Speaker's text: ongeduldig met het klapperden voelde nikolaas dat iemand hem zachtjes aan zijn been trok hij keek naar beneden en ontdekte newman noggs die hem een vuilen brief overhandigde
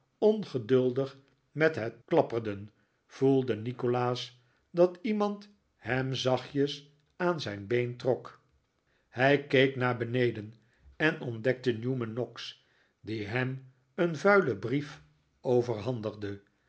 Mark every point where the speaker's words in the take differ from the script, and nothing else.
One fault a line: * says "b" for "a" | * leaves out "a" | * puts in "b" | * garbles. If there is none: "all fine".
all fine